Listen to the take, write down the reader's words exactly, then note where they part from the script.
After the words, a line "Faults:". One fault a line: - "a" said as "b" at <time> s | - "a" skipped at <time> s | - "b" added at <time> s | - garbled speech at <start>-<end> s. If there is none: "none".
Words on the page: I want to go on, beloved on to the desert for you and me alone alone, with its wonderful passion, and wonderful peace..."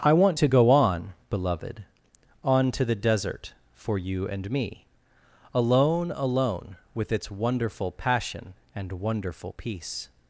I want to go on, beloved on to the desert for you and me alone alone, with its wonderful passion, and wonderful peace..."
Faults:
none